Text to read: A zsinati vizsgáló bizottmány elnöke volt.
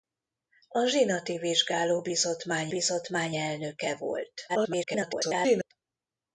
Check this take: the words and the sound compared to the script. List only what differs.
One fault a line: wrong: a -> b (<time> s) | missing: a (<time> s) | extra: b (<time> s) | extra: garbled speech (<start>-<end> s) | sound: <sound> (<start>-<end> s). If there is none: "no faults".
extra: bizottmány (2.7 s)
extra: garbled speech (4.5-5.7 s)